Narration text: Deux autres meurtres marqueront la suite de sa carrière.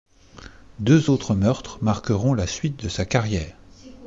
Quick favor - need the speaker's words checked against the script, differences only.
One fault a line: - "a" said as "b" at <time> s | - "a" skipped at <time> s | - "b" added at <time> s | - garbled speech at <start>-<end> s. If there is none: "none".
none